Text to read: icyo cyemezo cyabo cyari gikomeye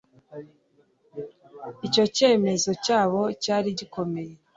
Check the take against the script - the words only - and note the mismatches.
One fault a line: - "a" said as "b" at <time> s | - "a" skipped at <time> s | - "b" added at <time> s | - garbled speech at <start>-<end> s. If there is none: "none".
none